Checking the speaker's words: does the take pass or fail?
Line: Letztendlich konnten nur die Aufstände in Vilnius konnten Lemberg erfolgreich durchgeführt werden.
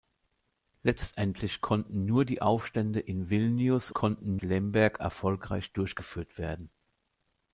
pass